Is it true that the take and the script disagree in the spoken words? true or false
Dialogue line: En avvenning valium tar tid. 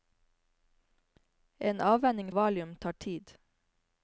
false